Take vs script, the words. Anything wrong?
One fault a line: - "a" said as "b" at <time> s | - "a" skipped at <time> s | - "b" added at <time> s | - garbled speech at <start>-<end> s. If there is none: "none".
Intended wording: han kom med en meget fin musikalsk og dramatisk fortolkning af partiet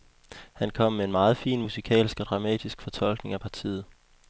none